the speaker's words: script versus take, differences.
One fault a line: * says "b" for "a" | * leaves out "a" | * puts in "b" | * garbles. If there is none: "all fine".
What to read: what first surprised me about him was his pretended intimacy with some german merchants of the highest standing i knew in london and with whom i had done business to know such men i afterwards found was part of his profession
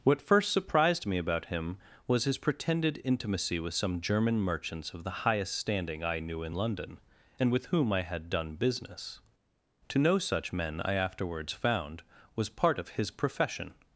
all fine